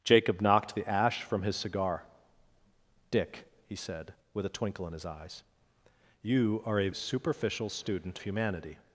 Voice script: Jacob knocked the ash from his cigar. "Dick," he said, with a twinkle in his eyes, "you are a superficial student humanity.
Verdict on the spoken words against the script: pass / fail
pass